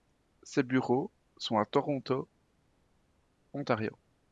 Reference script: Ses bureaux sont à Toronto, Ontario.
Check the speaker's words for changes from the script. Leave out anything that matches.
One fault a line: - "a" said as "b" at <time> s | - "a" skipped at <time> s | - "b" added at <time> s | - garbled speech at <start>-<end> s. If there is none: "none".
none